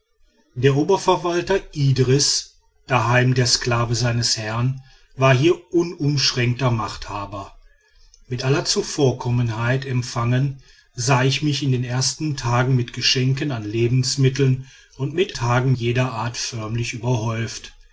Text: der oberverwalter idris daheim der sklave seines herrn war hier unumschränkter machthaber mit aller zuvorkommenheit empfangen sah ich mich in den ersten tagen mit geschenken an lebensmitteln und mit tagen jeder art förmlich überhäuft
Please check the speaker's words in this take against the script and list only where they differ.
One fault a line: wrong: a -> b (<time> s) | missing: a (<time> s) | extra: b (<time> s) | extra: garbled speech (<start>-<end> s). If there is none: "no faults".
no faults